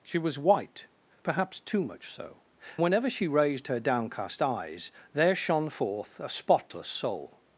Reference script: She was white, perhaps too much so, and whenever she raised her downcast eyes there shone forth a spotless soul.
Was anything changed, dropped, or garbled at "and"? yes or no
yes